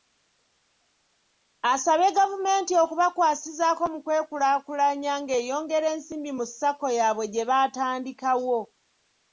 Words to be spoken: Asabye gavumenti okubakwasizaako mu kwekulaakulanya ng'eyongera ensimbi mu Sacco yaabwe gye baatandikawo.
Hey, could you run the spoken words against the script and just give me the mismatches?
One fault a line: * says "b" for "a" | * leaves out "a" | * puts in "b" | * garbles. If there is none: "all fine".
all fine